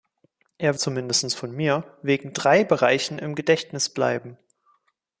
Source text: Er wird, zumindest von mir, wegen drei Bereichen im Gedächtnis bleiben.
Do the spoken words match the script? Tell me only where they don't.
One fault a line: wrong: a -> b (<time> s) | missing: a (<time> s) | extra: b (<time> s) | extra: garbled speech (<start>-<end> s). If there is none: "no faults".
missing: wird (0.8 s)